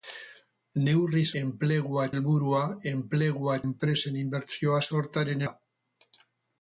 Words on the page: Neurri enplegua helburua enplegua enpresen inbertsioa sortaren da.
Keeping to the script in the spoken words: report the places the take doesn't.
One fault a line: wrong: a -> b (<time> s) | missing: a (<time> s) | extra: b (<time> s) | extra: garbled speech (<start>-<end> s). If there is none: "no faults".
no faults